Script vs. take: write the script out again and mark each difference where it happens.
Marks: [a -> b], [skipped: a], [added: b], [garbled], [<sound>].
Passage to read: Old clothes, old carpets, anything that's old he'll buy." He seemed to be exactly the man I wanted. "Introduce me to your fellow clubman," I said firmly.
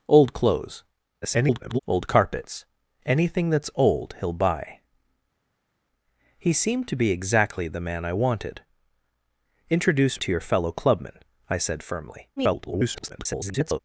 Old clothes, [garbled] old carpets, anything that's old he'll buy." He seemed to be exactly the man I wanted. "Introduce [skipped: me] to your fellow clubman," I said firmly. [garbled]